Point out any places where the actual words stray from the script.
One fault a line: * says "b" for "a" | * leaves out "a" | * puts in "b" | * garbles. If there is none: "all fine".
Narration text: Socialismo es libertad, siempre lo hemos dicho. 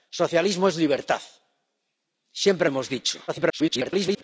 * leaves out "lo"
* garbles